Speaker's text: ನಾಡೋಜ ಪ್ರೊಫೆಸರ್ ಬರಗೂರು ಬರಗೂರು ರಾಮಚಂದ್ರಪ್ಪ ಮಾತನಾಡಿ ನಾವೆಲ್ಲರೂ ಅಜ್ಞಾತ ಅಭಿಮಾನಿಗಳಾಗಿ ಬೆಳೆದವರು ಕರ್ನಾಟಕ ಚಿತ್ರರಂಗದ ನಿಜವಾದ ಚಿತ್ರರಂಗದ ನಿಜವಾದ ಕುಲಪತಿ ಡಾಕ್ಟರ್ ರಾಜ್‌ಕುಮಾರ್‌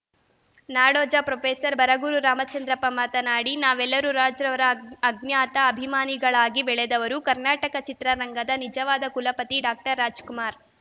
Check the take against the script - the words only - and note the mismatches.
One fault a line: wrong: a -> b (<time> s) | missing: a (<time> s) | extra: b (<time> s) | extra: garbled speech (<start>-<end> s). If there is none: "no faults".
missing: ಬರಗೂರು (2.2 s)
extra: ರಾಜ್‌ರವರ (4.1 s)
missing: ಚಿತ್ರರಂಗದ ನಿಜವಾದ (9.1 s)